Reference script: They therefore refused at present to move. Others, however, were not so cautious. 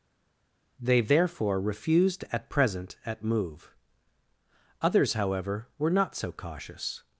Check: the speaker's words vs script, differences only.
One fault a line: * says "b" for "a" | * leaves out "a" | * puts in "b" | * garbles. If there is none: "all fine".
* says "at" for "to"